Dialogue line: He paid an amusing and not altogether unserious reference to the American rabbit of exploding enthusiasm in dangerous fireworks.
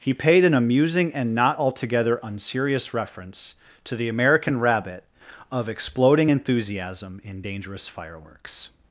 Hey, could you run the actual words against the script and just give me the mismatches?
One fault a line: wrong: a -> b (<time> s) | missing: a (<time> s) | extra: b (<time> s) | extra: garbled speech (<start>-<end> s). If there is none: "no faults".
no faults